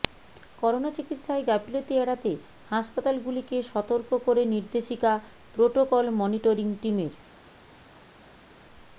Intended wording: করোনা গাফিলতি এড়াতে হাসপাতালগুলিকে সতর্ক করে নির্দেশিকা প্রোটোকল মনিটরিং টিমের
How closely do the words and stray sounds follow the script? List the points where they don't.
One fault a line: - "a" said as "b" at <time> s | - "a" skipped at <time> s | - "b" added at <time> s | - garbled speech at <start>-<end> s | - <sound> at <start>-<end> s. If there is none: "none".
- "চিকিৎসায়" added at 0.9 s